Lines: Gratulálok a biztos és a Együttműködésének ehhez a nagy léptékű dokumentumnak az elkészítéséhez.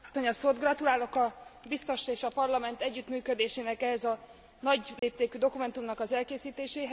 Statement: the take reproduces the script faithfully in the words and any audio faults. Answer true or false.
false